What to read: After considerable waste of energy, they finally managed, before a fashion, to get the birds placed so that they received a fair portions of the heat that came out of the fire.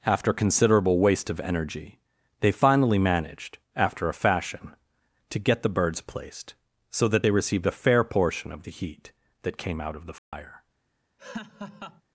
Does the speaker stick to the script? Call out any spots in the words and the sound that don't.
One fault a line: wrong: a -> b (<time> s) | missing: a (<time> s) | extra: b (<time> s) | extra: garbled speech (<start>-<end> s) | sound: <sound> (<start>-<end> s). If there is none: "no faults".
wrong: before -> after (3.8 s)
wrong: portions -> portion (8.0 s)
sound: dropout (10.2-10.3 s)
sound: laugh (11.2-12.0 s)